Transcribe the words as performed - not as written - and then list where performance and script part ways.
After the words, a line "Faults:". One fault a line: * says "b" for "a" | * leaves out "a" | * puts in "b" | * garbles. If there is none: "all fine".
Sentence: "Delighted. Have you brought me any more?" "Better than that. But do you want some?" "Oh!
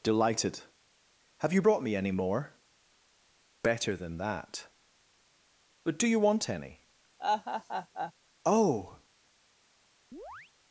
"Delighted. Have you brought me any more?" "Better than that. But do you want any?" "Oh!
Faults:
* says "any" for "some"